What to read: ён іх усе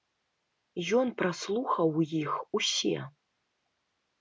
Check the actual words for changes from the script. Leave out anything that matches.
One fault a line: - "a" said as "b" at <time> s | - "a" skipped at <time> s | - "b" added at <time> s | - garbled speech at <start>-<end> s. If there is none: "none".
- "праслухаў" added at 1.2 s